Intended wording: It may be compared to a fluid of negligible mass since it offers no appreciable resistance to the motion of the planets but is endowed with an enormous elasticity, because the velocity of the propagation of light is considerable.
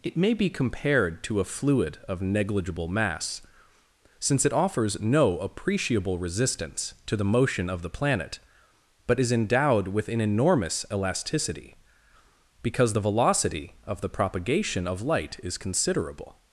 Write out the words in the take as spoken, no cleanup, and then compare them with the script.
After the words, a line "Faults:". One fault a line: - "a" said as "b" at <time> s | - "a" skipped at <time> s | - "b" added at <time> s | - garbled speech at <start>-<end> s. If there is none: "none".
It may be compared to a fluid of negligible mass since it offers no appreciable resistance to the motion of the planet but is endowed with an enormous elasticity, because the velocity of the propagation of light is considerable.
Faults:
- "planets" said as "planet" at 7.9 s